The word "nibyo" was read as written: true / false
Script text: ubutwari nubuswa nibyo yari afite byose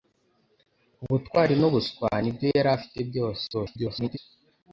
true